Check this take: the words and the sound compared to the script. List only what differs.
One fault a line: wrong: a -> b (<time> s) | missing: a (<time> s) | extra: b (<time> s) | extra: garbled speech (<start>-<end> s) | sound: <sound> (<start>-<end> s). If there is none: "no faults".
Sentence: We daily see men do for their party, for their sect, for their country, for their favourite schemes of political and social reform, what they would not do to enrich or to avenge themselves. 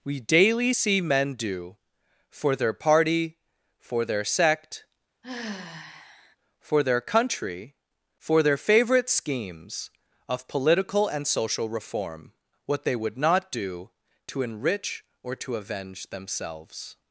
sound: sigh (5.2-6.4 s)